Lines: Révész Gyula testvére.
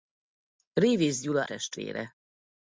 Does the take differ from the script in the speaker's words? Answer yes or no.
no